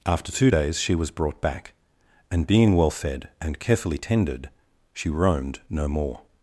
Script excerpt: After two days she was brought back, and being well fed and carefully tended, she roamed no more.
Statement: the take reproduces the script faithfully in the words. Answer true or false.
true